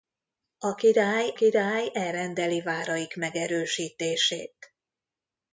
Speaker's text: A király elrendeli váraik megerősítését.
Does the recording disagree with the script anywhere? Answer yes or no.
yes